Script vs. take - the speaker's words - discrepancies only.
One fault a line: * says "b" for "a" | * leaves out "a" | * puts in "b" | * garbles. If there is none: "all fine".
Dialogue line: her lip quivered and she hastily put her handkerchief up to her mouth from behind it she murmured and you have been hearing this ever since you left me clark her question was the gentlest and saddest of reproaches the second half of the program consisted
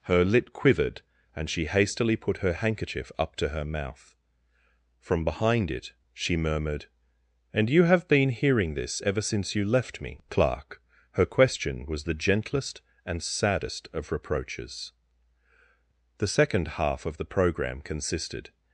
all fine